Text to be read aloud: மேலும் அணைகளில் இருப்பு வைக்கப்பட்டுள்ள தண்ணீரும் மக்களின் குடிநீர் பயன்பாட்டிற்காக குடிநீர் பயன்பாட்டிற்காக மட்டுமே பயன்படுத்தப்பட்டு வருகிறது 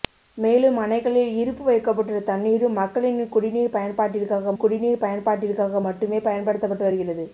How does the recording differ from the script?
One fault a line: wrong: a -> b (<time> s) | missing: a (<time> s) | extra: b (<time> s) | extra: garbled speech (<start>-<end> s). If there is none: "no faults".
no faults